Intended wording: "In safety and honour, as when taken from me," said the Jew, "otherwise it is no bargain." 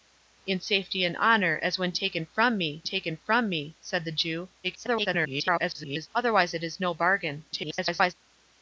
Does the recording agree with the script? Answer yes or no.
no